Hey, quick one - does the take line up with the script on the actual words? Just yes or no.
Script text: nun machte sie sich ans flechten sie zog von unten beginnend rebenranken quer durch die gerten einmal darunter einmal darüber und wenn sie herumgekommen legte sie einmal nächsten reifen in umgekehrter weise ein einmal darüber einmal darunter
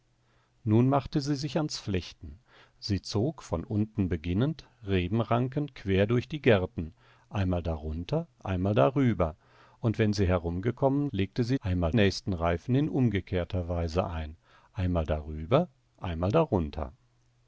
yes